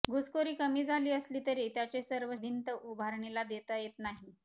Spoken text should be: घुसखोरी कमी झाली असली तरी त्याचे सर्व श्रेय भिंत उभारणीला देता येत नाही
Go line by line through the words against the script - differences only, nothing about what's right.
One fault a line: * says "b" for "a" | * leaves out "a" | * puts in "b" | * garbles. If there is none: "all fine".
* leaves out "श्रेय"